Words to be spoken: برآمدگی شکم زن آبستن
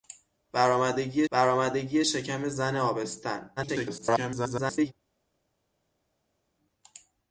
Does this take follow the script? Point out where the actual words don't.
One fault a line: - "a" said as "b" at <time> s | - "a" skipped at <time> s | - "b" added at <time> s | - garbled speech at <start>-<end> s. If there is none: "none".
- "برآمدگی" added at 1.3 s
- garbled speech at 3.6-4.9 s